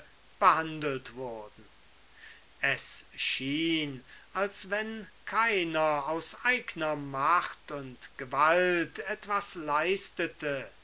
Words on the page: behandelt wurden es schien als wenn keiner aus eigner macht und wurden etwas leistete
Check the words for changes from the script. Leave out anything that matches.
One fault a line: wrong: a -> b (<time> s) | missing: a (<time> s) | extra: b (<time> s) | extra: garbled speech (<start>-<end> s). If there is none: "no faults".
wrong: wurden -> gewalt (8.2 s)